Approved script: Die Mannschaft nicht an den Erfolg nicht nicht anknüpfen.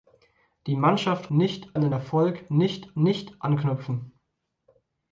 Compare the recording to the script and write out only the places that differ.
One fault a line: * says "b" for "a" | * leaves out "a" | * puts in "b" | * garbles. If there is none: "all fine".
all fine